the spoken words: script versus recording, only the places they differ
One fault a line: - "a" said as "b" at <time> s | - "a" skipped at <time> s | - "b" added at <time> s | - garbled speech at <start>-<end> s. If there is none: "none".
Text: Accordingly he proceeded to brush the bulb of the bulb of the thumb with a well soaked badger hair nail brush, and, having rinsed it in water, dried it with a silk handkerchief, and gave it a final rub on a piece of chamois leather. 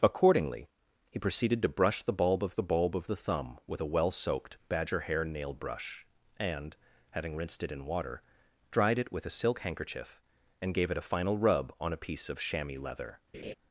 none